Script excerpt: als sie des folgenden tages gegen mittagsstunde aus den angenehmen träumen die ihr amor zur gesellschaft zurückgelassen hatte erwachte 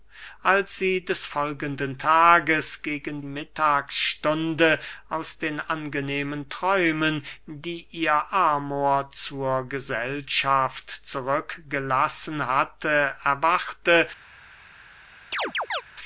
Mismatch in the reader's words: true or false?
false